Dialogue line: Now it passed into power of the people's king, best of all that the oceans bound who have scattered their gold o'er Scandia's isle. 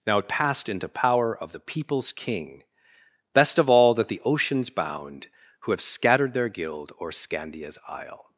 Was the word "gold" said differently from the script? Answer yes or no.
yes